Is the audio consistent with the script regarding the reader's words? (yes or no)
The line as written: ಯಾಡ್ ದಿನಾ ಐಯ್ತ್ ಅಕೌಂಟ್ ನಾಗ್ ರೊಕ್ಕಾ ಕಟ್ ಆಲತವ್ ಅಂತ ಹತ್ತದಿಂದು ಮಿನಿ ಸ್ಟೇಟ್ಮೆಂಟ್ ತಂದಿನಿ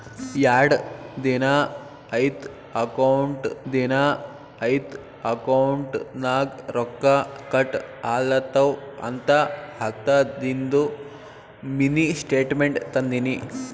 no